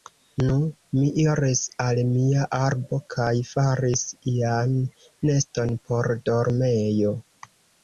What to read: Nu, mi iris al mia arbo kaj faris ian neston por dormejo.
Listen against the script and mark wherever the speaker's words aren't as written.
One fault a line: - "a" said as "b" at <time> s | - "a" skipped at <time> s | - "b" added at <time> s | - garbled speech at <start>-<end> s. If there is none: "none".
none